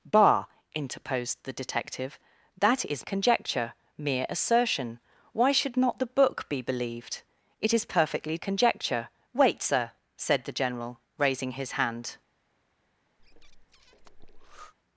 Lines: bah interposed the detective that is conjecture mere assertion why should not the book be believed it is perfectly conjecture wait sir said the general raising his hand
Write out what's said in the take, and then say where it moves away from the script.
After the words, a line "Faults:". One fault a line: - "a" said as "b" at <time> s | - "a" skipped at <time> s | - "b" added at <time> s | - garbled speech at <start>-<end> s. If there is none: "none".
bah interposed the detective that is conjecture mere assertion why should not the book be believed it is perfectly conjecture wait sir said the general raising his hand
Faults:
none